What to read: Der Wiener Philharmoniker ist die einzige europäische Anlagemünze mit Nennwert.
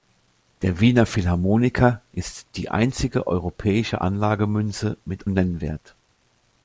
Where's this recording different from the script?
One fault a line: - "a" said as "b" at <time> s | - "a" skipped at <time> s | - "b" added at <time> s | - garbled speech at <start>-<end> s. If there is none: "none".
none